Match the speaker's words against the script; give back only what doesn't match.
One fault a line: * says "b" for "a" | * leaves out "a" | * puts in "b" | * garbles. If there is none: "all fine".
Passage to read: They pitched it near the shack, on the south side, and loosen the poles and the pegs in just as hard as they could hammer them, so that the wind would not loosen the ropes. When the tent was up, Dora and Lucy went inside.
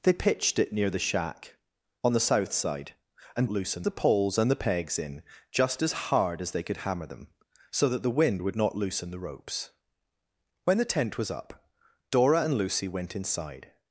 all fine